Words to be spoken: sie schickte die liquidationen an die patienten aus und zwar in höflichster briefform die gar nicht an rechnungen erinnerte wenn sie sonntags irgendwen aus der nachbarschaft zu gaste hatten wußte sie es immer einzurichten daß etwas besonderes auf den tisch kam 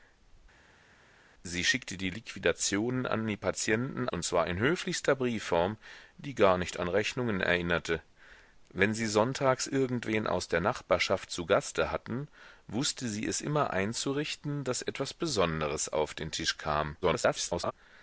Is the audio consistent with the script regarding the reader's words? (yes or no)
no